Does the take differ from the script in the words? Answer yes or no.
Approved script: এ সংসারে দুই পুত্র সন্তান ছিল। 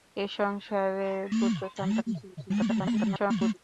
yes